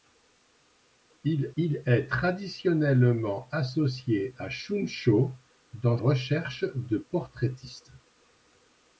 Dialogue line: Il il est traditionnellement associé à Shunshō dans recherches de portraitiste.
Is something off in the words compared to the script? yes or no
no